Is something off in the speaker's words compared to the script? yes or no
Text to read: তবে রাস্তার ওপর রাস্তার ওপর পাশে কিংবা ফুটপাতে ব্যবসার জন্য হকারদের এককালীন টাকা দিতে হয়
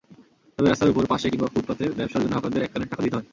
yes